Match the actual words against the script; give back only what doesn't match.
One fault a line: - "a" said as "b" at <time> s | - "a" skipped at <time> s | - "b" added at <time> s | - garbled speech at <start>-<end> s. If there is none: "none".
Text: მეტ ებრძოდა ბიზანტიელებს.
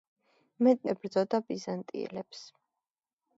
none